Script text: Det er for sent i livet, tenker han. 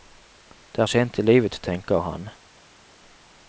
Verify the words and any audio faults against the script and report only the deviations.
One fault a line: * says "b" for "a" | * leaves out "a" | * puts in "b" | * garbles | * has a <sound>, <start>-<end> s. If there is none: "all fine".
* leaves out "for"